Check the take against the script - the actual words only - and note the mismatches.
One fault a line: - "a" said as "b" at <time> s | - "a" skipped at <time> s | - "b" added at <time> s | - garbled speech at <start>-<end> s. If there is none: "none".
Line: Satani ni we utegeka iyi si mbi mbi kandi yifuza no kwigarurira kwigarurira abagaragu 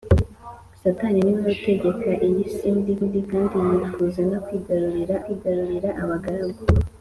none